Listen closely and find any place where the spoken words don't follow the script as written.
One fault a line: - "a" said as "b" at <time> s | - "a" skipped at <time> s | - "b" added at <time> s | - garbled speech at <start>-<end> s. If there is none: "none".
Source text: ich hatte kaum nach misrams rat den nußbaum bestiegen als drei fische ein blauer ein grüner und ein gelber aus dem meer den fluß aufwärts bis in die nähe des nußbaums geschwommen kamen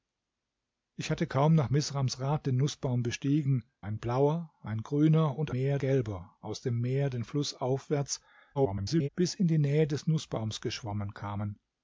- "als drei fische" skipped at 3.7 s
- "ein" said as "meer" at 5.5 s
- garbled speech at 8.5-9.1 s